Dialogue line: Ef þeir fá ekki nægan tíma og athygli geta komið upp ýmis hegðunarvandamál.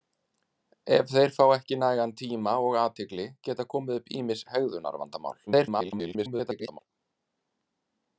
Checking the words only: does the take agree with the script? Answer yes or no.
no